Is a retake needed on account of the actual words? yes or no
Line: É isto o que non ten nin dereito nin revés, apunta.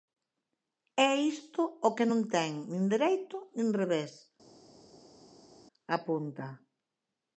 no